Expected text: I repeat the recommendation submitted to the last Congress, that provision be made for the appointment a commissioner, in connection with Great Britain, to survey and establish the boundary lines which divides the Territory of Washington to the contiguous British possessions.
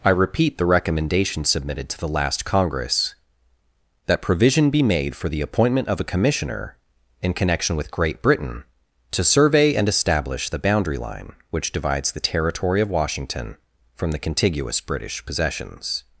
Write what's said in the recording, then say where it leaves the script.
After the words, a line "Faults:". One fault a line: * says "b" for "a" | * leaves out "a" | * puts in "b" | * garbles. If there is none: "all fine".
I repeat the recommendation submitted to the last Congress, that provision be made for the appointment of a commissioner, in connection with Great Britain, to survey and establish the boundary line which divides the Territory of Washington from the contiguous British possessions.
Faults:
* puts in "of"
* says "line" for "lines"
* says "from" for "to"